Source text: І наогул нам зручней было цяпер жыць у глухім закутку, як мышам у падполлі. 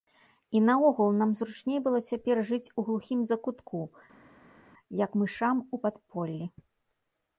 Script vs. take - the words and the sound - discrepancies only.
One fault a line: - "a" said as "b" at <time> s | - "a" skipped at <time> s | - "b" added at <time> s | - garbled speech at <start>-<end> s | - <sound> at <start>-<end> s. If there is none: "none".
none